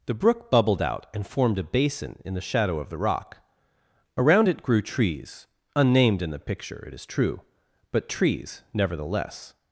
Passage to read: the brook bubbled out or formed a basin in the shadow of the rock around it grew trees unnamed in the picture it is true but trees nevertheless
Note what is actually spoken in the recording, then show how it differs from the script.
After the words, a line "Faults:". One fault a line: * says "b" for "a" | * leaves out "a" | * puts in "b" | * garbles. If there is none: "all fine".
the brook bubbled out and formed a basin in the shadow of the rock around it grew trees unnamed in the picture it is true but trees nevertheless
Faults:
* says "and" for "or"